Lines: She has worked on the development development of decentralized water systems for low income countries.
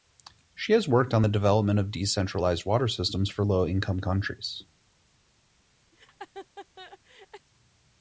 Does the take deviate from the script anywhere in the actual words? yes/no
yes